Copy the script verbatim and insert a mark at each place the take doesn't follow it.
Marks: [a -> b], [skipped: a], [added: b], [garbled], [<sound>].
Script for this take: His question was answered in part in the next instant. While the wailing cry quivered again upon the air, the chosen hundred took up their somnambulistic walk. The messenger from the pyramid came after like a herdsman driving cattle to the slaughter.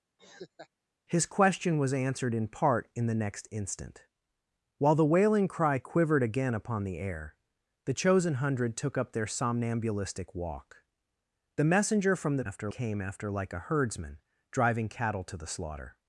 [laugh] His question was answered in part in the next instant. While the wailing cry quivered again upon the air, the chosen hundred took up their somnambulistic walk. The messenger from the [pyramid -> after] came after like a herdsman driving cattle to the slaughter.